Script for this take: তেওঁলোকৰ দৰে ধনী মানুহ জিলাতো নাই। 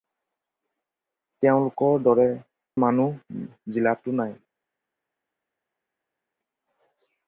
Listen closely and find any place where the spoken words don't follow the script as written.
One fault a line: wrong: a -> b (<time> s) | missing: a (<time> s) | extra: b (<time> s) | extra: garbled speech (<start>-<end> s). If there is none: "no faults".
missing: ধনী (2.3 s)